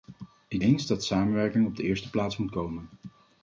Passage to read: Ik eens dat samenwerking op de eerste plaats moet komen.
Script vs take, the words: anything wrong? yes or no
no